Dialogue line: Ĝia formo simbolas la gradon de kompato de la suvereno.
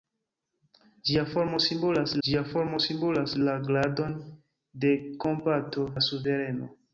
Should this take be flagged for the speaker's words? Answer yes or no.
yes